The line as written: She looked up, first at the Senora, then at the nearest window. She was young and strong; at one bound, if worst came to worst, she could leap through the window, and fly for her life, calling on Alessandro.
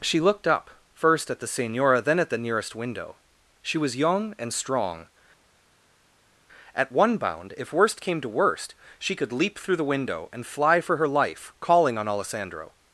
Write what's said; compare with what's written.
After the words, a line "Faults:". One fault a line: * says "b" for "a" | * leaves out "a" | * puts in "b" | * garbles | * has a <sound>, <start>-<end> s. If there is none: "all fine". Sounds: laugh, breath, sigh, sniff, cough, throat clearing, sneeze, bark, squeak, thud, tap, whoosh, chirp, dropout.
She looked up, first at the Senora, then at the nearest window. She was young and strong; at one bound, if worst came to worst, she could leap through the window, and fly for her life, calling on Alessandro.
Faults:
all fine